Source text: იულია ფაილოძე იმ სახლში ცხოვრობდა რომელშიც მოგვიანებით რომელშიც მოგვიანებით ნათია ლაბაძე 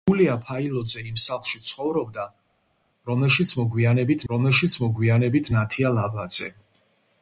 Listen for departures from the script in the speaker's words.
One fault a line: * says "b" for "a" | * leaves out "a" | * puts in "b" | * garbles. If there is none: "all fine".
all fine